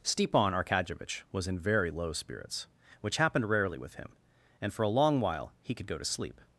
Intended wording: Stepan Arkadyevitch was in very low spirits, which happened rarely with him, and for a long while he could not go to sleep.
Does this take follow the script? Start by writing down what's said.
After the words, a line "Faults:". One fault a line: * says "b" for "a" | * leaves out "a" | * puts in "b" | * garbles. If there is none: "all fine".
Stepan Arkadyevitch was in very low spirits, which happened rarely with him, and for a long while he could go to sleep.
Faults:
* leaves out "not"